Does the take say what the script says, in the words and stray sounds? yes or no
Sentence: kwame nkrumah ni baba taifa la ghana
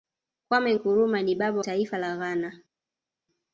yes